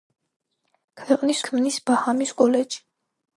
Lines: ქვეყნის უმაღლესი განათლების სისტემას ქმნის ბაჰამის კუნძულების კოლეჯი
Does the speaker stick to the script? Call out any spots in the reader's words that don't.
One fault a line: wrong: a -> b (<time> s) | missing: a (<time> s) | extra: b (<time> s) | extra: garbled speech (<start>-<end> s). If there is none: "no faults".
missing: უმაღლესი განათლების სისტემას (1.4 s)
missing: კუნძულების (2.4 s)